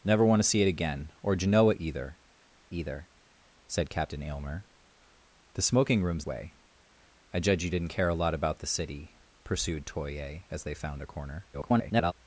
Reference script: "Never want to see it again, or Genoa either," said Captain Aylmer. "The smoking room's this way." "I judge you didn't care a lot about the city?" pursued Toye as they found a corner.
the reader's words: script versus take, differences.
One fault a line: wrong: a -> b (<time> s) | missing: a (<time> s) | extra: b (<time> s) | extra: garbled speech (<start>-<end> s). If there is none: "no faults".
extra: either (2.7 s)
missing: this (6.3 s)
extra: garbled speech (11.5-12.1 s)